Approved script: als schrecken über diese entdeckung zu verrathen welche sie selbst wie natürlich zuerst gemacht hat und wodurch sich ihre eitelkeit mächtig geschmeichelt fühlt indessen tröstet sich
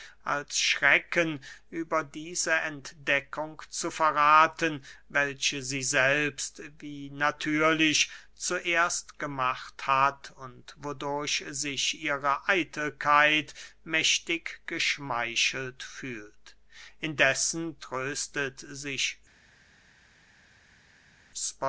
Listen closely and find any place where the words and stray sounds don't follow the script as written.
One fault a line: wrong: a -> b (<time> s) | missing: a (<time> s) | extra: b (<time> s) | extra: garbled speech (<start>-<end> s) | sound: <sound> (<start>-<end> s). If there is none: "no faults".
no faults